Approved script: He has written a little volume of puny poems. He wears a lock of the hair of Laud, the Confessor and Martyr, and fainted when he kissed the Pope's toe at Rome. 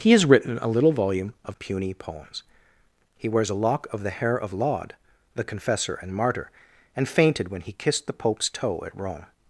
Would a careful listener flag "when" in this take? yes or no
no